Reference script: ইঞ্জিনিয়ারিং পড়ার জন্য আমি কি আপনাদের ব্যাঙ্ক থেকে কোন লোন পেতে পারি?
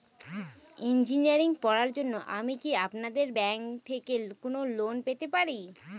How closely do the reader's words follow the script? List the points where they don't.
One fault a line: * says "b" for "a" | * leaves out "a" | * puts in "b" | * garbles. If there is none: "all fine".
all fine